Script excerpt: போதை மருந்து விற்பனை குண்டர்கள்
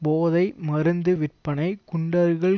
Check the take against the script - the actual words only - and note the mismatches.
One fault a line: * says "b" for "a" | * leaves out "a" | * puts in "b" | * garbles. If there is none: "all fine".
all fine